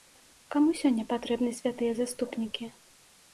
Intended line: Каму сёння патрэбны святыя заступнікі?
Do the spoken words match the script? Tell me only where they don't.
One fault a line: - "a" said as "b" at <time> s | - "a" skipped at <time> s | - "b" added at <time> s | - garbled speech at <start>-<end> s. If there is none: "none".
none